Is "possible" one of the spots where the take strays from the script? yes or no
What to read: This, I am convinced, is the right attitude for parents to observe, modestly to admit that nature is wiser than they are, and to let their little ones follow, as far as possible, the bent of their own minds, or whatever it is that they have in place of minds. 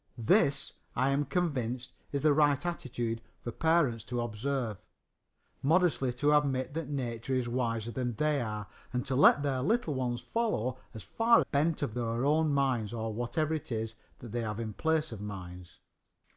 yes